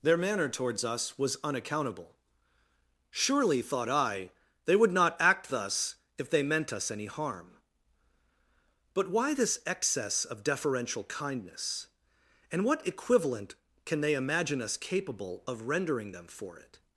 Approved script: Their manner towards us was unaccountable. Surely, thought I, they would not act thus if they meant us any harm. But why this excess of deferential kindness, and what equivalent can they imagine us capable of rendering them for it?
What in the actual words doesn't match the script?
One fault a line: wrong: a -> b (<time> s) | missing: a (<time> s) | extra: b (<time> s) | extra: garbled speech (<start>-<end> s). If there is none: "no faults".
no faults